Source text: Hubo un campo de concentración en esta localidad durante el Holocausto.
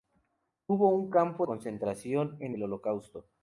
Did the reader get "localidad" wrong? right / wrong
wrong